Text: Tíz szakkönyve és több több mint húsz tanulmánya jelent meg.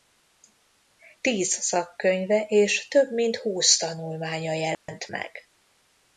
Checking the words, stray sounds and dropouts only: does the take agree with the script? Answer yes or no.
no